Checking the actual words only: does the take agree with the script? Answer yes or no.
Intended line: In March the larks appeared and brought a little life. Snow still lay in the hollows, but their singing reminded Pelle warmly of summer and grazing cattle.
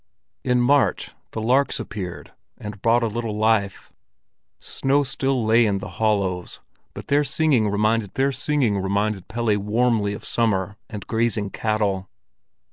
no